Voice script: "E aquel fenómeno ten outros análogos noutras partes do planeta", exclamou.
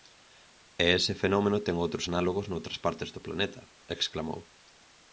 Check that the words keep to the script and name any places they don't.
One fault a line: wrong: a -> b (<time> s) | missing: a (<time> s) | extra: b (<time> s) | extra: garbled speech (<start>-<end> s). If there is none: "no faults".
wrong: aquel -> ese (1.0 s)